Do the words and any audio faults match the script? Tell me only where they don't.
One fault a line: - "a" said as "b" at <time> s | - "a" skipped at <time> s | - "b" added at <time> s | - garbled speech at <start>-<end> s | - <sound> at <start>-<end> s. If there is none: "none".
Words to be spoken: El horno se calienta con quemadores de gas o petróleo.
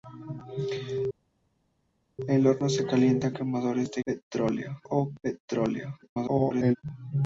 - "con" skipped at 3.3 s
- "gas" said as "petróleo" at 4.0 s
- garbled speech at 6.0-6.8 s